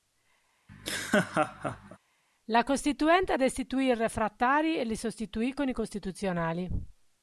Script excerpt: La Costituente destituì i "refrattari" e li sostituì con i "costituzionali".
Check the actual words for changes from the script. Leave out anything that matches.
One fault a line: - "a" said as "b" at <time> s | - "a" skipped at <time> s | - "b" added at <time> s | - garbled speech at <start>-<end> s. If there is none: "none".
none